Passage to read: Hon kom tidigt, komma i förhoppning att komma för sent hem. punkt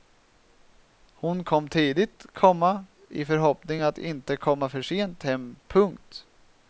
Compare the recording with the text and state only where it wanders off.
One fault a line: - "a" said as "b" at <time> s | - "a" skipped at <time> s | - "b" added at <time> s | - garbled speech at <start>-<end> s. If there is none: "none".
- "inte" added at 4.0 s